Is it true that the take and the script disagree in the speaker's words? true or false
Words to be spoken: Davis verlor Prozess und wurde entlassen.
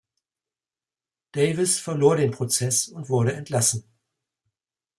true